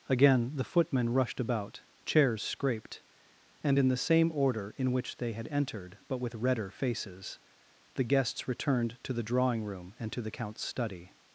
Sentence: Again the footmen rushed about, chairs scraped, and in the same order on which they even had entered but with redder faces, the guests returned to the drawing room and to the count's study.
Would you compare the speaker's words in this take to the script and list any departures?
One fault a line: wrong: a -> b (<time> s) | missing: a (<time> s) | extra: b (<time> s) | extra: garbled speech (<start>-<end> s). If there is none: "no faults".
wrong: on -> in (4.8 s)
missing: even (5.3 s)